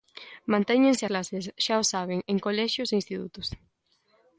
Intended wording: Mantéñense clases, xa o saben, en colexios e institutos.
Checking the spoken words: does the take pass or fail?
pass